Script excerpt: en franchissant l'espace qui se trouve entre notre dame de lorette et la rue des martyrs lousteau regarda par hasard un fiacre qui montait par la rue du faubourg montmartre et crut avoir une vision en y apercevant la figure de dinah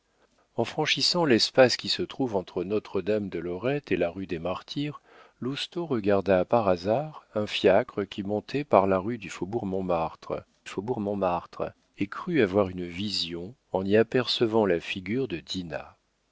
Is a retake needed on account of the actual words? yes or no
yes